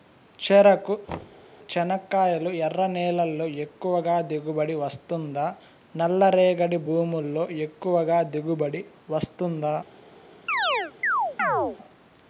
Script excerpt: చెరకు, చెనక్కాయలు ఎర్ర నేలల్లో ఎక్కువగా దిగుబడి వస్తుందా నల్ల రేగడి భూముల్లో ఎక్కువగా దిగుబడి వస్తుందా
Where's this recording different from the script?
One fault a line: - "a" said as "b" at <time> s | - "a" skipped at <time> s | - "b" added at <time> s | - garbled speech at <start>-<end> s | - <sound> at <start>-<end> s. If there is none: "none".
- thud at 1.1-1.5 s
- chirp at 10.5-11.8 s